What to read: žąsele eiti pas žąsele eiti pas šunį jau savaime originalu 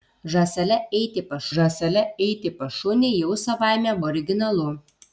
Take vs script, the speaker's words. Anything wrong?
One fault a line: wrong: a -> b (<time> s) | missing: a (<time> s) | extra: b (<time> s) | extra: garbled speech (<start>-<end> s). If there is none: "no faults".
no faults